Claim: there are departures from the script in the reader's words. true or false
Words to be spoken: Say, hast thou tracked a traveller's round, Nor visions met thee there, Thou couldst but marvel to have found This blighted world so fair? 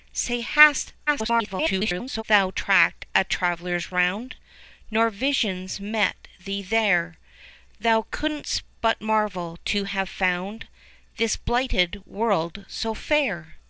true